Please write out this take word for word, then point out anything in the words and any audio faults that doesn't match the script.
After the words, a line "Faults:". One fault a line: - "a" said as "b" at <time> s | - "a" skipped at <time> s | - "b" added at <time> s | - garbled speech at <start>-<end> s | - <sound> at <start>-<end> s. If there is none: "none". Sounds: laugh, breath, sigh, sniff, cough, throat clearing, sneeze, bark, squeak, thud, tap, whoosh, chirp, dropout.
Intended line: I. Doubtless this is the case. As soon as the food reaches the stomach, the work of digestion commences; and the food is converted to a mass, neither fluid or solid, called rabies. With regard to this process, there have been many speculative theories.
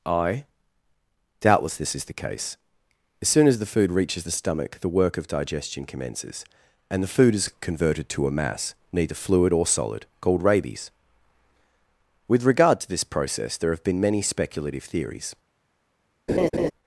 I. Doubtless this is the case. As soon as the food reaches the stomach, the work of digestion commences; and the food is converted to a mass, neither fluid or solid, called rabies. With regard to this process, there have been many speculative theories.
Faults:
- laugh at 16.3-16.7 s